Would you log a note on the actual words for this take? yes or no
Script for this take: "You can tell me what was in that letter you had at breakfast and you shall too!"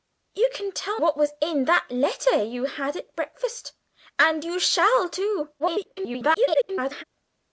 yes